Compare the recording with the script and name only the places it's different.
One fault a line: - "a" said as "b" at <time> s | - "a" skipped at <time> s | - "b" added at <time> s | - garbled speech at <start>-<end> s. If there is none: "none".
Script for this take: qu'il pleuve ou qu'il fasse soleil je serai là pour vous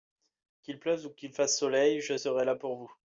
none